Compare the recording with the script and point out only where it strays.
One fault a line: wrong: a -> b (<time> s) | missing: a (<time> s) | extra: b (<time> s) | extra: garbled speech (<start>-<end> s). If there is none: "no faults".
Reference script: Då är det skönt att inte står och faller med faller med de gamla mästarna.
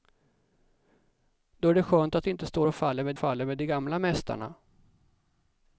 no faults